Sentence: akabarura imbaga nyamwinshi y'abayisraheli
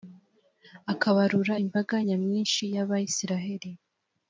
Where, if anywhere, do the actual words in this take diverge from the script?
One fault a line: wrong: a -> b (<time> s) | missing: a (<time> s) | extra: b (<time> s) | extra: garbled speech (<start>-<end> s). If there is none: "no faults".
no faults